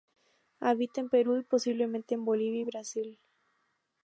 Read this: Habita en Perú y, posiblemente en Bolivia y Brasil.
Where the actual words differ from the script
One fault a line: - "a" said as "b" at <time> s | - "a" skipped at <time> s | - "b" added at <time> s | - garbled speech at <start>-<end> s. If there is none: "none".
none